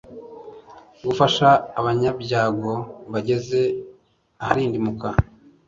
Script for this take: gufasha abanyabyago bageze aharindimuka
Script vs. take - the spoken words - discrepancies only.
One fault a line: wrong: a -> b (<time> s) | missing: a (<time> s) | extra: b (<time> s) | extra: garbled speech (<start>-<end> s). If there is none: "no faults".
no faults